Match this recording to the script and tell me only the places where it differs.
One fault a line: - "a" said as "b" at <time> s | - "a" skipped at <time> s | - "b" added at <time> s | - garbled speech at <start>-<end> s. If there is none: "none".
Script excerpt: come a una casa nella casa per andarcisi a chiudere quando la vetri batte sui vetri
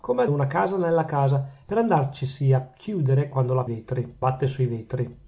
none